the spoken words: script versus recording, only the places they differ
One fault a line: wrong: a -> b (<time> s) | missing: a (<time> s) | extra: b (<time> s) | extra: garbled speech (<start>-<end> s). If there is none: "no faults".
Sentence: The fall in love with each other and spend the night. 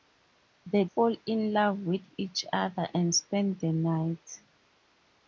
no faults